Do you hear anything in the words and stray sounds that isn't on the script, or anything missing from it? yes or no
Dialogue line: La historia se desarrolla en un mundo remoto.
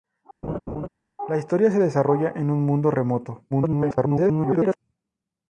yes